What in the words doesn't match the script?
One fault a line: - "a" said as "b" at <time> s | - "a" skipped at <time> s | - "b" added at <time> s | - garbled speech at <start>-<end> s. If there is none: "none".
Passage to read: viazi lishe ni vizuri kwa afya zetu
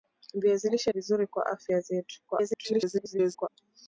- "ni" skipped at 0.9 s
- garbled speech at 2.3-3.5 s